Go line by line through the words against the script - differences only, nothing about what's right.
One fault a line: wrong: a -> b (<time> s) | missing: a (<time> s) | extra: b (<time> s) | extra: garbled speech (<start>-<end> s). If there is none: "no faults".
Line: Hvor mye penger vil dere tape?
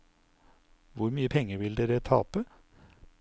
no faults